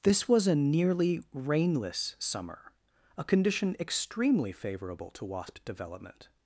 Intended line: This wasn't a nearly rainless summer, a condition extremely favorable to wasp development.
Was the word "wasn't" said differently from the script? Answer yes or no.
yes